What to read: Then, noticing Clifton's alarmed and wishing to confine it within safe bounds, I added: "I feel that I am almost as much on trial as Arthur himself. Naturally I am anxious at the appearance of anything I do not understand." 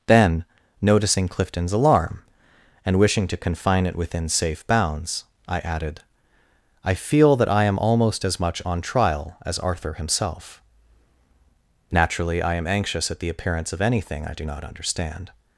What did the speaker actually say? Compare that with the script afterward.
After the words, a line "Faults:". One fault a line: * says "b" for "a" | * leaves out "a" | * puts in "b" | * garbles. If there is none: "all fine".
Then, noticing Clifton's alarm and wishing to confine it within safe bounds, I added: "I feel that I am almost as much on trial as Arthur himself. Naturally I am anxious at the appearance of anything I do not understand."
Faults:
* says "alarm" for "alarmed"